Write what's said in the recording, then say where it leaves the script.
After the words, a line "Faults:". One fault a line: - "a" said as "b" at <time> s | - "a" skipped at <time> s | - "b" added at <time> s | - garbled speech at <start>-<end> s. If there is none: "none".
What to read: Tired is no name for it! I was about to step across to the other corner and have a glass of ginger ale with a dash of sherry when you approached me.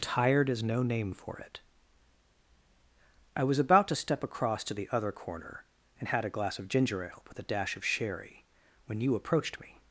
Tired is no name for it! I was about to step across to the other corner and had a glass of ginger ale with a dash of sherry when you approached me.
Faults:
- "have" said as "had" at 6.1 s